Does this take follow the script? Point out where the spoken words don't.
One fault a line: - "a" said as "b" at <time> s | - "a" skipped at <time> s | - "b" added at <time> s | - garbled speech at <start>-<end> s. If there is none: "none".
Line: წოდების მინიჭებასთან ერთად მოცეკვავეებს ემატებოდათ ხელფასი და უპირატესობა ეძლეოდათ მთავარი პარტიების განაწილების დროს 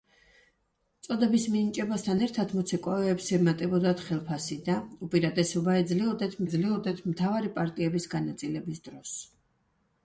- "ეძლეოდათ" added at 6.5 s